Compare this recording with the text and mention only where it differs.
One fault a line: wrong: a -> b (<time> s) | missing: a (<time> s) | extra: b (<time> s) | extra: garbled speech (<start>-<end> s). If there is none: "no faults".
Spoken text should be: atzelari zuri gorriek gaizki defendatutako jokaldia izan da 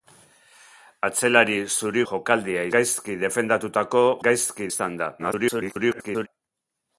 wrong: gorriek -> jokaldia (2.1 s)
wrong: jokaldia -> gaizki (4.3 s)
extra: garbled speech (5.2-6.3 s)